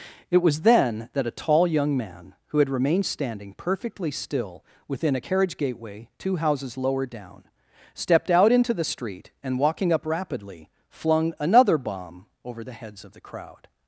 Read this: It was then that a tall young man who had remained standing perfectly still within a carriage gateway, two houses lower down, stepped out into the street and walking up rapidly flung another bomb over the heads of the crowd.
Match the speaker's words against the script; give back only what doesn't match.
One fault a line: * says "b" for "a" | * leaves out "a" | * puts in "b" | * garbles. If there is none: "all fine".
all fine